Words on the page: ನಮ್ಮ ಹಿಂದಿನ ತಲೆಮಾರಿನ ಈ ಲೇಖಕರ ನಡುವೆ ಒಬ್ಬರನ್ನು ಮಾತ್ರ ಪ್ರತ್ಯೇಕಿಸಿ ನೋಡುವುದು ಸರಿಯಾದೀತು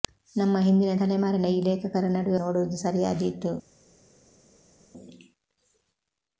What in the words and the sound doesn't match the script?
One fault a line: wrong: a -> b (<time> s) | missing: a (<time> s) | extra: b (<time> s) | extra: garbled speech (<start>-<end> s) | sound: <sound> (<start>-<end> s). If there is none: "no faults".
missing: ಒಬ್ಬರನ್ನು ಮಾತ್ರ ಪ್ರತ್ಯೇಕಿಸಿ (2.4 s)